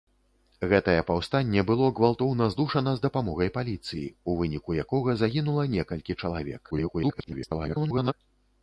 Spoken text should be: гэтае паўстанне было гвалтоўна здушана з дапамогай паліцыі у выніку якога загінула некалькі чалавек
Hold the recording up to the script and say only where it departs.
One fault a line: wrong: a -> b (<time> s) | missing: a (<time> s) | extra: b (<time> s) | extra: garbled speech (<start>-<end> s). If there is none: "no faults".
extra: garbled speech (6.7-8.1 s)